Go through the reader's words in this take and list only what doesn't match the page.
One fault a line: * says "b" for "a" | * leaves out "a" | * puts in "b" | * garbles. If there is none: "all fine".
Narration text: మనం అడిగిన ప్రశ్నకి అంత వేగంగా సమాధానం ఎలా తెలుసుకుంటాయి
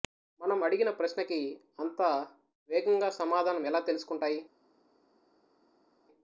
all fine